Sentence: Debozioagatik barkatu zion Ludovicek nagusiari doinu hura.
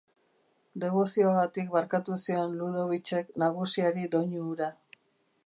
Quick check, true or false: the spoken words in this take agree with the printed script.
true